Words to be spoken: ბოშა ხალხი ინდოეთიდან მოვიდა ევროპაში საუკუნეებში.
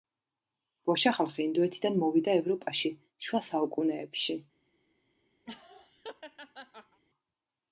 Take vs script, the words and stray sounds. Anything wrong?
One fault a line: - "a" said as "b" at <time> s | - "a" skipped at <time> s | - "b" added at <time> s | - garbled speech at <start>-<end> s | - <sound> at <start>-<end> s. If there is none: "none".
- "შუა" added at 3.3 s
- laugh at 5.5-7.0 s